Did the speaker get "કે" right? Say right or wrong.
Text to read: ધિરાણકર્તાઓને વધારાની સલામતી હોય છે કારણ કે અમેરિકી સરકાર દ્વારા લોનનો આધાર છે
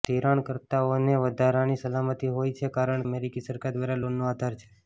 wrong